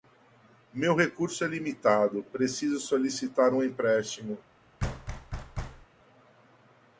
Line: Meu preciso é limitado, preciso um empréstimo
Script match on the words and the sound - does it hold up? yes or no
no